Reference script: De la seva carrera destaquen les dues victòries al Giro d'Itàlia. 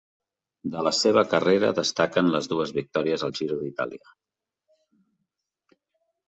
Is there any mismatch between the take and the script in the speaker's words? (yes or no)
no